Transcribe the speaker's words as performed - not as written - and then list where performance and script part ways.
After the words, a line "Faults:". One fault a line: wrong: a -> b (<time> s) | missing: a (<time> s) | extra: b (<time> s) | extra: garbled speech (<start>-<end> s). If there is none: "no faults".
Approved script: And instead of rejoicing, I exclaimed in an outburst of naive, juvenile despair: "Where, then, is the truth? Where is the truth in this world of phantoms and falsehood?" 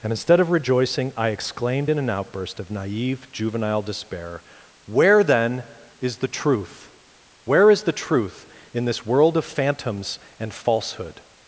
And instead of rejoicing, I exclaimed in an outburst of naive, juvenile despair: "Where, then, is the truth? Where is the truth in this world of phantoms and falsehood?"
Faults:
no faults